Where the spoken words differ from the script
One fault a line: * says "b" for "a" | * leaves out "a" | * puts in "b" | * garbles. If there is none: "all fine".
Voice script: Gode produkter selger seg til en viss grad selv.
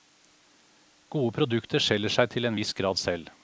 all fine